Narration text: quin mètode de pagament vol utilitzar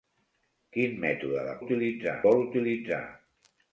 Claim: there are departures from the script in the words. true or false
true